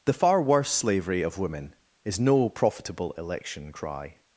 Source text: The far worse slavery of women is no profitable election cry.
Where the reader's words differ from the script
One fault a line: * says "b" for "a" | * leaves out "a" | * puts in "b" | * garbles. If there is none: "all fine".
all fine